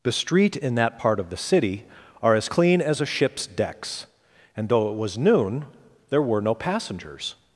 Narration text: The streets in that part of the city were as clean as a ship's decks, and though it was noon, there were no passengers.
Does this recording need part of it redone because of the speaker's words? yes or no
yes